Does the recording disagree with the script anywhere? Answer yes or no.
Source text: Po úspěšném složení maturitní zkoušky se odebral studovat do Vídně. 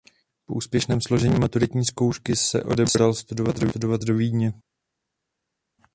no